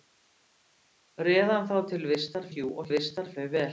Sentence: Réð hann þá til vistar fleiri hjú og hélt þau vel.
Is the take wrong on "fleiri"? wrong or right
wrong